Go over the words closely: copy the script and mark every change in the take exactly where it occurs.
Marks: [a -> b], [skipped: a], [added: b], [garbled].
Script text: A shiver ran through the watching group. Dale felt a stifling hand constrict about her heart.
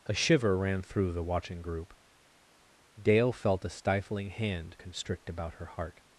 A shiver ran through the watching group. Dale felt a stifling hand constrict about her heart.